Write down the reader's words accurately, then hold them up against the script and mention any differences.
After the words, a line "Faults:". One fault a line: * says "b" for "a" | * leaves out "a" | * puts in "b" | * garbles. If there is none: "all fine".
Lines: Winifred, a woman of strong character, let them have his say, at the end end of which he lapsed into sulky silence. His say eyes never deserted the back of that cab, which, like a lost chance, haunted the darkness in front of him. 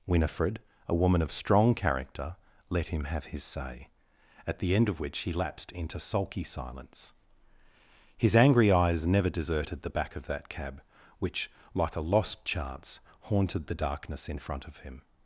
Winifred, a woman of strong character, let him have his say, at the end of which he lapsed into sulky silence. His angry eyes never deserted the back of that cab, which, like a lost chance, haunted the darkness in front of him.
Faults:
* says "him" for "them"
* leaves out "end"
* says "angry" for "say"